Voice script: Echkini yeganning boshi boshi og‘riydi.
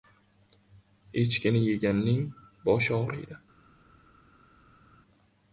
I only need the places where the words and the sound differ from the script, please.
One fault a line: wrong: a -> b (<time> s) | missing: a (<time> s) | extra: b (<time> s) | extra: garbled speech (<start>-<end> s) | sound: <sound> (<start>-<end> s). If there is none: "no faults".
missing: boshi (3.0 s)